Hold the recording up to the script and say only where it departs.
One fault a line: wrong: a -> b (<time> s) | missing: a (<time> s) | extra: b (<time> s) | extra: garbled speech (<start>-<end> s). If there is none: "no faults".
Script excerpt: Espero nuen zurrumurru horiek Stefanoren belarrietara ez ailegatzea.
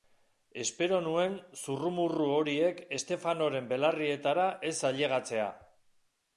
no faults